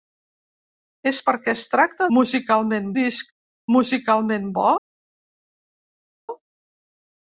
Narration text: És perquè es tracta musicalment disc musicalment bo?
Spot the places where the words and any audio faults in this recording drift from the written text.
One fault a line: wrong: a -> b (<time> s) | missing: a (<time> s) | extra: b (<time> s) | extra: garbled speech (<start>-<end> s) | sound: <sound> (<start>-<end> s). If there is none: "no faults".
no faults